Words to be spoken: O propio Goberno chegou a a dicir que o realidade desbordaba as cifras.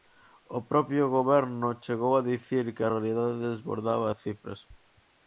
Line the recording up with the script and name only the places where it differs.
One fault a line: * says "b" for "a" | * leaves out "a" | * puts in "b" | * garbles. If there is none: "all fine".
* leaves out "a"
* says "a" for "o"